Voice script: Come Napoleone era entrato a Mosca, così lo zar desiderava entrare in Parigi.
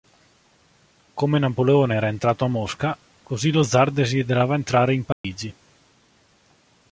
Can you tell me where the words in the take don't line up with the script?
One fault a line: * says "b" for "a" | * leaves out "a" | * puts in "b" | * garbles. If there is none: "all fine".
all fine